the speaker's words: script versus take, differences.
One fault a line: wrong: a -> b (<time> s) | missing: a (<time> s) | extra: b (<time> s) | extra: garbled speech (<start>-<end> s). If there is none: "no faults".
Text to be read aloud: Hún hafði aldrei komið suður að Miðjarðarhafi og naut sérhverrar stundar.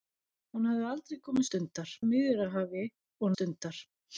wrong: suður -> stundar (1.5 s)
missing: naut sérhverrar (3.3 s)